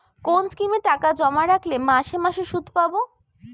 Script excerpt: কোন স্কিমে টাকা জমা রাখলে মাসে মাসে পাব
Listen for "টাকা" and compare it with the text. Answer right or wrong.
right